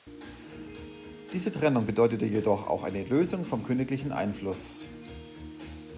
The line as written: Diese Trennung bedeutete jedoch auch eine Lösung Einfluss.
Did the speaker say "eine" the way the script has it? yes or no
yes